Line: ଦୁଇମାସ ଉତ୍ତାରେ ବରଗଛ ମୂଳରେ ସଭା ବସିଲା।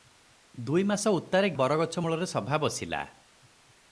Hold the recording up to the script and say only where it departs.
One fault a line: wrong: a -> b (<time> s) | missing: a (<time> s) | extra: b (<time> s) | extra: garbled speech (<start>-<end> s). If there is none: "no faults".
no faults